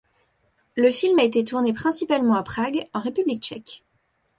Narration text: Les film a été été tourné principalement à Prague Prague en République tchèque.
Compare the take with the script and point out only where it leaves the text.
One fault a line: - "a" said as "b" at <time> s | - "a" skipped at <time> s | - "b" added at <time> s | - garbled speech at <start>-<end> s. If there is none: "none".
- "Les" said as "Le" at 0.8 s
- "été" skipped at 1.4 s
- "Prague" skipped at 2.9 s